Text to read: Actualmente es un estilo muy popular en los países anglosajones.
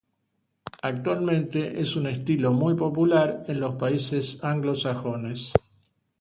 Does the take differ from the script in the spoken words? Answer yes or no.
no